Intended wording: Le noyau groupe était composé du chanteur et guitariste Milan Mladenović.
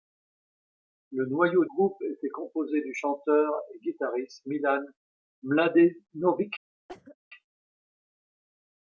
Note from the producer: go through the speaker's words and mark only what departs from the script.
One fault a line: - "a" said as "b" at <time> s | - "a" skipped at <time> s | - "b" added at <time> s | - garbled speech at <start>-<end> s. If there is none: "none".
none